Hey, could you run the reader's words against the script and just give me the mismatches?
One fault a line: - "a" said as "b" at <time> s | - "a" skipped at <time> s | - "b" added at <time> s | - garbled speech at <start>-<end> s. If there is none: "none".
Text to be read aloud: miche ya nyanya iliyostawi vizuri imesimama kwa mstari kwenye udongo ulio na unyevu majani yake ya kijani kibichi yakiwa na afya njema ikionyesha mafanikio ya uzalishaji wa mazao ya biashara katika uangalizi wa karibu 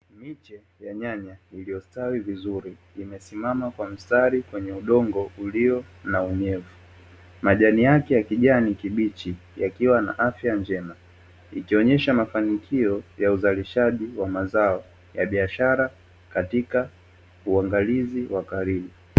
none